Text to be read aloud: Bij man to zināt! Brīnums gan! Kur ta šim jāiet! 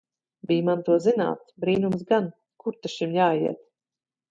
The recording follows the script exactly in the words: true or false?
true